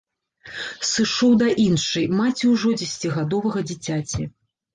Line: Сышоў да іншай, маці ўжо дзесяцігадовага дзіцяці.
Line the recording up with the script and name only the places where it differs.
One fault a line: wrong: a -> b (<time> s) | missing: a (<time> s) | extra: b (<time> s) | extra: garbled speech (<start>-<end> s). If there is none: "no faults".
no faults